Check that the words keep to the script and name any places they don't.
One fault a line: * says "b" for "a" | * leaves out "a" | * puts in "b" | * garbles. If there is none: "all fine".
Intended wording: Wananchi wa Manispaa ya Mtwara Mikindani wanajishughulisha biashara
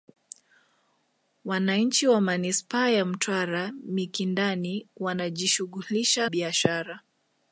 all fine